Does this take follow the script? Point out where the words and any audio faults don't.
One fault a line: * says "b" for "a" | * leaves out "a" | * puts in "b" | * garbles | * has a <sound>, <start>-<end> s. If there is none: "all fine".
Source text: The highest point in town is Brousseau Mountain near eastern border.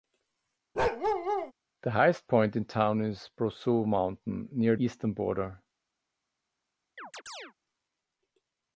* has a bark, 0.8-1.5 s
* has a chirp, 7.0-7.5 s